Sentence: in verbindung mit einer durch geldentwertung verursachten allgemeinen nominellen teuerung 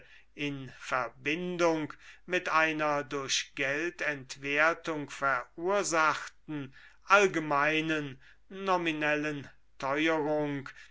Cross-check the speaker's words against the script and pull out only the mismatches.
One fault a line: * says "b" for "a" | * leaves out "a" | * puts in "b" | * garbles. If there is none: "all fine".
all fine